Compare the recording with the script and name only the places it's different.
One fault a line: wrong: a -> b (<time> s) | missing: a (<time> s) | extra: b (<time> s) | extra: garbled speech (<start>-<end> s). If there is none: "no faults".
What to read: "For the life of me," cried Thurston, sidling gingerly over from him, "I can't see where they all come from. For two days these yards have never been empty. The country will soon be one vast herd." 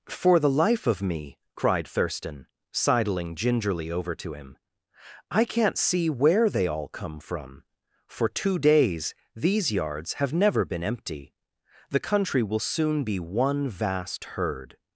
wrong: from -> to (4.2 s)